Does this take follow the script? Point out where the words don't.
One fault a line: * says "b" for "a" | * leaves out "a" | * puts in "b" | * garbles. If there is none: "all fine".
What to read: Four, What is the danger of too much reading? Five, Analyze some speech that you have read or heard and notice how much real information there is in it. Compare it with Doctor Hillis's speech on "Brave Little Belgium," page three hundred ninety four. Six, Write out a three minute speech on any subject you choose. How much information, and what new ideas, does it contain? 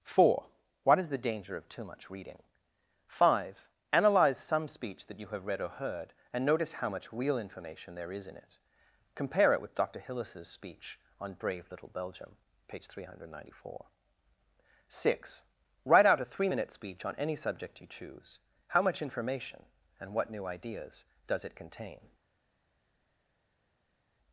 all fine